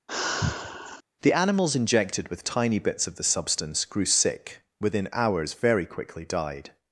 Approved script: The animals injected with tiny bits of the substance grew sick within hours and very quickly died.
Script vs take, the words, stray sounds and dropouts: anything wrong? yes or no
yes